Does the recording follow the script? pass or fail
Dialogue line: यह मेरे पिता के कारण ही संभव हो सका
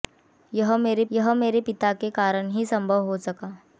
fail